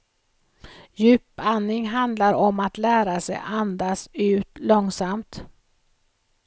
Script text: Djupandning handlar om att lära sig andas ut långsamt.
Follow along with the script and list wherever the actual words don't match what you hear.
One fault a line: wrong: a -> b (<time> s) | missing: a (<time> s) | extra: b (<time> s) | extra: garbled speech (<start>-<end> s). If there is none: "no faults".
no faults